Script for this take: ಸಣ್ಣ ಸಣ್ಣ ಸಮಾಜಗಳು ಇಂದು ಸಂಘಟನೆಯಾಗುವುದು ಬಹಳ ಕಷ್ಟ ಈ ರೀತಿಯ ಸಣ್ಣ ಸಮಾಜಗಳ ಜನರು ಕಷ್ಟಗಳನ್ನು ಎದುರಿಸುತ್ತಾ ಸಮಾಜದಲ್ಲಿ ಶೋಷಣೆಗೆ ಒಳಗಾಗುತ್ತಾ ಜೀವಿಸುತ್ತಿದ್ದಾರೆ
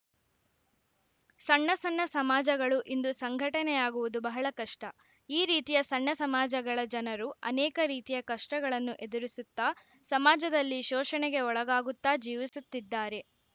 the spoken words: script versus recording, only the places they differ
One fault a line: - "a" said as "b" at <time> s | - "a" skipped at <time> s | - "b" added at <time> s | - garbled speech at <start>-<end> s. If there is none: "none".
- "ಅನೇಕ ರೀತಿಯ" added at 7.5 s